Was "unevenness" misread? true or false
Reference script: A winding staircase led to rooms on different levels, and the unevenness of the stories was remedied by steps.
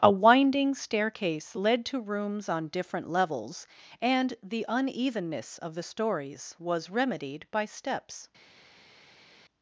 false